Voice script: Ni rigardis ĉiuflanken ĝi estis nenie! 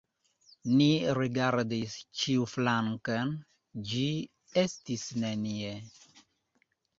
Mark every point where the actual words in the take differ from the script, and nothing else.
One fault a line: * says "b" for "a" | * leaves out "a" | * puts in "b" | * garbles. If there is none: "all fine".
all fine